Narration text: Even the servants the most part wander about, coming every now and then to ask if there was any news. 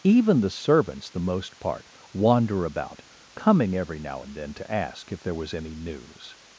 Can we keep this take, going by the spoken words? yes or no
yes